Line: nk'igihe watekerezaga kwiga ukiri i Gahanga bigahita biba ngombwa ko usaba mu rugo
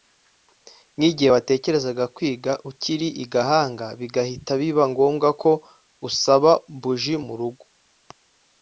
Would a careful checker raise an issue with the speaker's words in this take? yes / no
yes